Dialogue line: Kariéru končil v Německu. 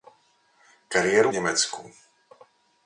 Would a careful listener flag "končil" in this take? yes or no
yes